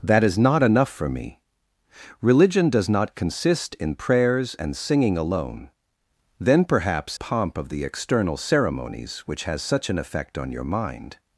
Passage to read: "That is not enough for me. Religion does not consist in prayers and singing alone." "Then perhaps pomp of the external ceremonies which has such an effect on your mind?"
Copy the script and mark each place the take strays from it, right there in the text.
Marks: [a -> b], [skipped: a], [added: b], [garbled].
"That is not enough for me. Religion does not consist in prayers and singing alone." "Then perhaps pomp of the external ceremonies which has such an effect on your mind?"